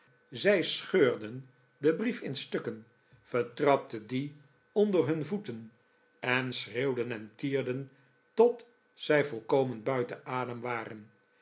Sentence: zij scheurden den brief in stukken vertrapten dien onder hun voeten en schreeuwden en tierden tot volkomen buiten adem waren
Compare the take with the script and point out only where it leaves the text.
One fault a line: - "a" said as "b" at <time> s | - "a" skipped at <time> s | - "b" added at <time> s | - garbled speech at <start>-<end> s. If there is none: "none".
- "zij" added at 8.9 s